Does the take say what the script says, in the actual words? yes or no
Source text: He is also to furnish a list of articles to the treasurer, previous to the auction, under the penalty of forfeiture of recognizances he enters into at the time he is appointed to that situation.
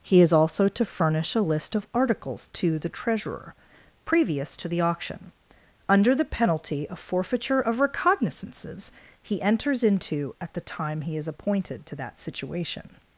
yes